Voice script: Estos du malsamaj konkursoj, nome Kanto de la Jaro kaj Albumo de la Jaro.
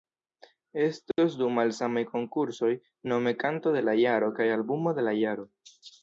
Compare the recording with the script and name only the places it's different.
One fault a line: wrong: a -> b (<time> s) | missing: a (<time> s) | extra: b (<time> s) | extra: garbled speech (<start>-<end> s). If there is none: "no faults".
no faults